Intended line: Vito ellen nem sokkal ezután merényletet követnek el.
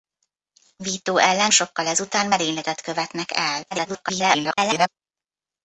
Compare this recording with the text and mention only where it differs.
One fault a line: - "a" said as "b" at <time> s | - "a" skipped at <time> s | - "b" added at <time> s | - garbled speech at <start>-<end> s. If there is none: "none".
- "nem" skipped at 1.5 s
- garbled speech at 3.7-4.9 s